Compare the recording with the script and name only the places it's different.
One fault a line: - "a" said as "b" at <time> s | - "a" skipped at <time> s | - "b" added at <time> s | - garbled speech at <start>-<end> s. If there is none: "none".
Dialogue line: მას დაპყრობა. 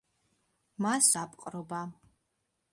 none